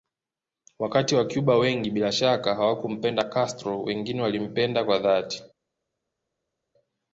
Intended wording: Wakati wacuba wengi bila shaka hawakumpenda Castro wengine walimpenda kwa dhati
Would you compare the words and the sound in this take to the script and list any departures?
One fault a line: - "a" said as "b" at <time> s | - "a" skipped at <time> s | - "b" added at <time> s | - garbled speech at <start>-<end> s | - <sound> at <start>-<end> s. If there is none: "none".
none